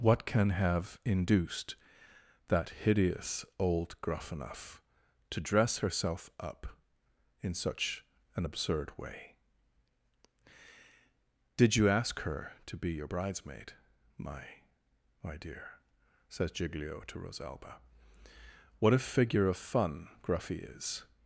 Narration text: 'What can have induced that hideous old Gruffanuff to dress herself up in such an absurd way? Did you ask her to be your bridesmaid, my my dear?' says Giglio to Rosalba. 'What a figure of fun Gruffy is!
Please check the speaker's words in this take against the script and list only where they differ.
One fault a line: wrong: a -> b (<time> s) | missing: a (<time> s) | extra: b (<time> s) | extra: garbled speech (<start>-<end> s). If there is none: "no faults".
no faults